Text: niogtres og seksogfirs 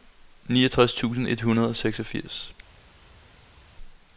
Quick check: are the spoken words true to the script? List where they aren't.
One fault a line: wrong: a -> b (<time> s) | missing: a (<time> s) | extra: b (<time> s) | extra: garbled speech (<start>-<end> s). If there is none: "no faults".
extra: tusind et hundrede (0.9 s)